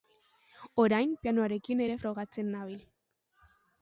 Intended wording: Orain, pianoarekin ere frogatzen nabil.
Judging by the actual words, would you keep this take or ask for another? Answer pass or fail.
pass